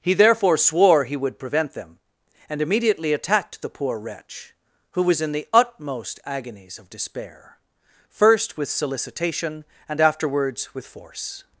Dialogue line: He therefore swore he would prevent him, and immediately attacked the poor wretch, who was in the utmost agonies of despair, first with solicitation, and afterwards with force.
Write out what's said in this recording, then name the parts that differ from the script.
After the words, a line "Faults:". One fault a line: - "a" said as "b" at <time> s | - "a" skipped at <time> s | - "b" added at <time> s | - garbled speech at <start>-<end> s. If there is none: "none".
He therefore swore he would prevent them, and immediately attacked the poor wretch, who was in the utmost agonies of despair, first with solicitation, and afterwards with force.
Faults:
- "him" said as "them" at 1.7 s